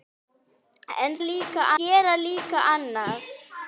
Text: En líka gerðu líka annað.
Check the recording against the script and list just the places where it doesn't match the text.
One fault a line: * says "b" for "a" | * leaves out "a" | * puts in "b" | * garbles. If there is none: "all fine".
all fine